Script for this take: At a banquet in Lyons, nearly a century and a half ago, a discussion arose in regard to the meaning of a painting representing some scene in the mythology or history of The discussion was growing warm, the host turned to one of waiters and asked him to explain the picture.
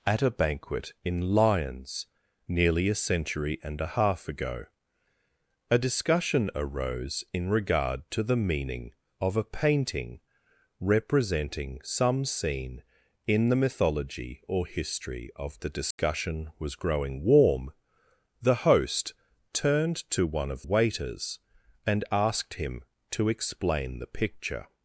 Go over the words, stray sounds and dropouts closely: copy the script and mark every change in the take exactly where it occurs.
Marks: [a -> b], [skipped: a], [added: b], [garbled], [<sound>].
At a banquet in Lyons, nearly a century and a half ago, a discussion arose in regard to the meaning of a painting representing some scene in the mythology or history of The discussion [dropout] was growing warm, the host turned to one of waiters and asked him to explain the picture.